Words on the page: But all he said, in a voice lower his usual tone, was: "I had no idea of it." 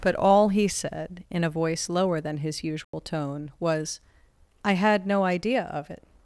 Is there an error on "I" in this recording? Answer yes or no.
no